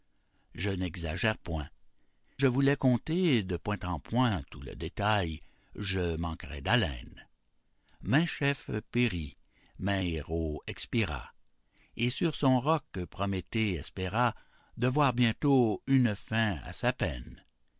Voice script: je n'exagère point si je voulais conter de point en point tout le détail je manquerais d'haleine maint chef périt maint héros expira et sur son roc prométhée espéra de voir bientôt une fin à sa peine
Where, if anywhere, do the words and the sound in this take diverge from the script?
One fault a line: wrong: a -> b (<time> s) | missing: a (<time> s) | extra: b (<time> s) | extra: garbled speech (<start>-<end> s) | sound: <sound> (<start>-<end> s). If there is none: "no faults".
missing: si (1.7 s)